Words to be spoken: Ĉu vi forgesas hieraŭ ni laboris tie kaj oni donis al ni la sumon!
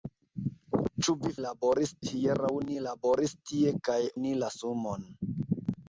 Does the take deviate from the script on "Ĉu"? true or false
false